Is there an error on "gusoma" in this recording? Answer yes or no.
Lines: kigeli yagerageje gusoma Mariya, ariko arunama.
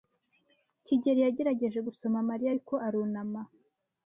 no